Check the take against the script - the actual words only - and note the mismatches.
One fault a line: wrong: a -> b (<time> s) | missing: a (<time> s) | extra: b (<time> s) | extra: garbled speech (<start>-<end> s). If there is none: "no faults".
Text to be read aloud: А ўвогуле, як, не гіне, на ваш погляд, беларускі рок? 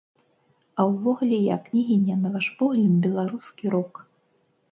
no faults